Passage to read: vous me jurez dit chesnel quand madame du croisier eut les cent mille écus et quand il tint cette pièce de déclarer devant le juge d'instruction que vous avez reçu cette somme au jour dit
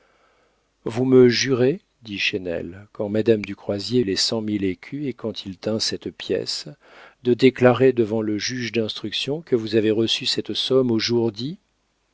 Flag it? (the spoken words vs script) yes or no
yes